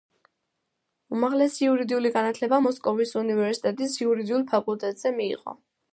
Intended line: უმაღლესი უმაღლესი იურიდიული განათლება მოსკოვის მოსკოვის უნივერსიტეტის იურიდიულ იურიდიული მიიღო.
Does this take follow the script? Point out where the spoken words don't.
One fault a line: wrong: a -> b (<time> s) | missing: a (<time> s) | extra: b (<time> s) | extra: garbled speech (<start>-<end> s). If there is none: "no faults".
missing: უმაღლესი (1.6 s)
missing: მოსკოვის (3.2 s)
wrong: იურიდიული -> ფაკულტეტზე (4.5 s)